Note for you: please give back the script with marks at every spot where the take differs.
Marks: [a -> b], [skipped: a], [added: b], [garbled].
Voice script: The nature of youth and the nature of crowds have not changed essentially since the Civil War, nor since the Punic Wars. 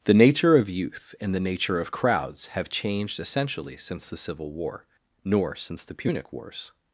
The nature of youth and the nature of crowds have [skipped: not] changed essentially since the Civil War, nor since the Punic Wars.